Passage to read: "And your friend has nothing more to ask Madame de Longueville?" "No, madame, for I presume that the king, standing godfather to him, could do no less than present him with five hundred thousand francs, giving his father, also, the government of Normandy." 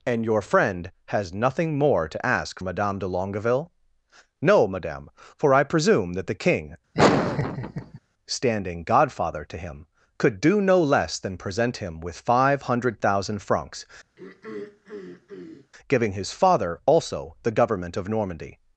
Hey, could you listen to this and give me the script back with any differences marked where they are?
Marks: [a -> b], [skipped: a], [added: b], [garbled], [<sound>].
"And your friend has nothing more to ask Madame de Longueville?" "No, madame, for I presume that the king, [laugh] standing godfather to him, could do no less than present him with five hundred thousand francs, [throat clearing] giving his father, also, the government of Normandy."